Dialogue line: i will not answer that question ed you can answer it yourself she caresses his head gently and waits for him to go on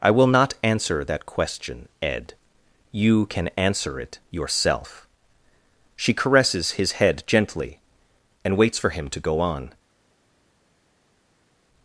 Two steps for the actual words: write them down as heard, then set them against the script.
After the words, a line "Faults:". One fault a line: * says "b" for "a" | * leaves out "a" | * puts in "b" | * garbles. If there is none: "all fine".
i will not answer that question ed you can answer it yourself she caresses his head gently and waits for him to go on
Faults:
all fine